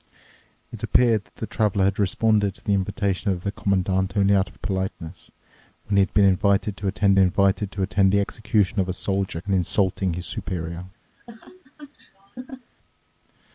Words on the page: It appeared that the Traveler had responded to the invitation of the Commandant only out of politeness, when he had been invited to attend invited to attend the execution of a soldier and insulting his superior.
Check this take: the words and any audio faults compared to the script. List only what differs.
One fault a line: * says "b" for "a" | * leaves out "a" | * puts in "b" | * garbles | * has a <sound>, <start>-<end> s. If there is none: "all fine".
* has a laugh, 11.1-12.7 s